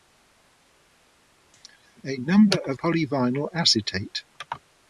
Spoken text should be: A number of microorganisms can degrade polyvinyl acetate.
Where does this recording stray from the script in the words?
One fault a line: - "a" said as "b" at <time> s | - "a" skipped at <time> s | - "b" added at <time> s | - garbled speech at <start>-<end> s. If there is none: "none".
- "microorganisms can degrade" skipped at 2.8 s